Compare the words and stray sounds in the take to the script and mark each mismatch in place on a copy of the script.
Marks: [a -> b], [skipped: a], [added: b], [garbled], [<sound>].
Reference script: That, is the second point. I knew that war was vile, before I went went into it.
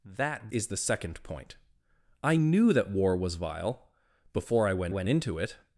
That, is the second point. I knew that war was vile, before I went went into it.